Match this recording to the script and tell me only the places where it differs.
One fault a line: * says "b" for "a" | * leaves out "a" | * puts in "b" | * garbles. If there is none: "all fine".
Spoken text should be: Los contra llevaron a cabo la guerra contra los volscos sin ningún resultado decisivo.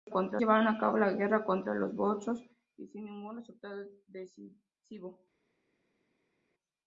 all fine